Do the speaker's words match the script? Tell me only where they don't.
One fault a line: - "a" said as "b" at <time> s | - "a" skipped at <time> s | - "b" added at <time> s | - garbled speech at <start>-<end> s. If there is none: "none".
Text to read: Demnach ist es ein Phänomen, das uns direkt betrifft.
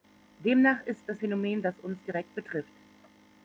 - "ein" skipped at 1.2 s